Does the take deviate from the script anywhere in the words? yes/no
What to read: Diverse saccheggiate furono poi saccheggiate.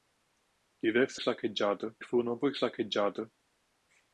no